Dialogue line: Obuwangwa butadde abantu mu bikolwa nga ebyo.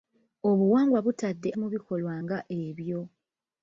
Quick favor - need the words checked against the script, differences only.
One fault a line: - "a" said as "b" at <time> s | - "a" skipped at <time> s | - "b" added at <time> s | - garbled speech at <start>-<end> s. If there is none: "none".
- "abantu" skipped at 1.5 s